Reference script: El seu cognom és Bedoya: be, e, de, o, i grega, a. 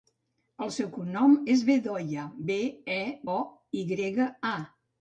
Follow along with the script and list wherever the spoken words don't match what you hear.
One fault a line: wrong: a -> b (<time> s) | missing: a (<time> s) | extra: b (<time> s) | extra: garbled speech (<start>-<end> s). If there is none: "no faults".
missing: de (3.0 s)